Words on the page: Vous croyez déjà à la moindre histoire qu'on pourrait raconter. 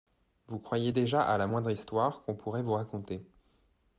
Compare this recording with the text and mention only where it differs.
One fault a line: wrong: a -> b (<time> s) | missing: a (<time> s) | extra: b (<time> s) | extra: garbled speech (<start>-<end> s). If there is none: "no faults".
extra: vous (2.6 s)